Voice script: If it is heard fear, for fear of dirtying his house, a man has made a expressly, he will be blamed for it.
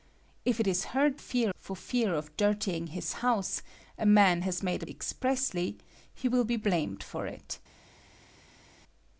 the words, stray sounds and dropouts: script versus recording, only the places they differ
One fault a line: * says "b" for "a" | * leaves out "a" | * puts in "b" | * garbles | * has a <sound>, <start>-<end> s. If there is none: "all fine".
all fine